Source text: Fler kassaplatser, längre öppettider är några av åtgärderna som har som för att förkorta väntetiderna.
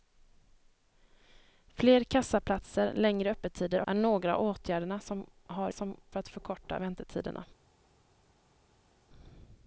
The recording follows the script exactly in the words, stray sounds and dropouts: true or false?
true